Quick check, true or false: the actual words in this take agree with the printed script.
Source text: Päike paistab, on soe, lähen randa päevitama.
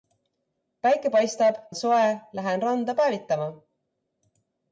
true